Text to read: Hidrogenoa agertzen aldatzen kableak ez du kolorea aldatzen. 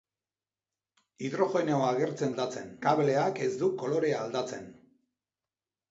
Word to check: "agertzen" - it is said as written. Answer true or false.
true